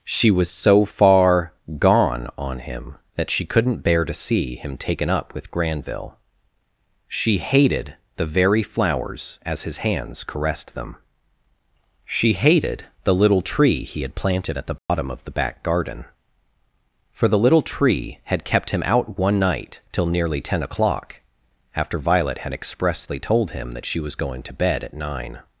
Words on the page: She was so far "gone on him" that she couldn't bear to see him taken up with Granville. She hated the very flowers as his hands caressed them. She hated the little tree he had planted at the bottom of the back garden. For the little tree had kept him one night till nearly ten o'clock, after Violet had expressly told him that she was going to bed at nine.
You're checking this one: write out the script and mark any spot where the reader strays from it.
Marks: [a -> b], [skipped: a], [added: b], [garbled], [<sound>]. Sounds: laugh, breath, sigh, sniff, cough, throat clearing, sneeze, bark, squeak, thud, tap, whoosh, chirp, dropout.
She was so far "gone on him" that she couldn't bear to see him taken up with Granville. She hated the very flowers as his hands caressed them. She hated the little tree he had planted at the bottom [dropout] of the back garden. For the little tree had kept him [added: out] one night till nearly ten o'clock, after Violet had expressly told him that she was going to bed at nine.